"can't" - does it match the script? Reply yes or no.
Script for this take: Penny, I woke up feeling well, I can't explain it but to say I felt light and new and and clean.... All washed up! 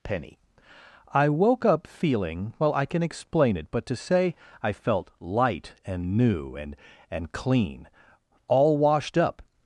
no